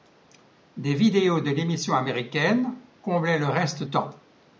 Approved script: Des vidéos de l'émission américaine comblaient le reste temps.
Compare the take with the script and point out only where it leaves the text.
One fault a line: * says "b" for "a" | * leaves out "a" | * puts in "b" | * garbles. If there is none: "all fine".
all fine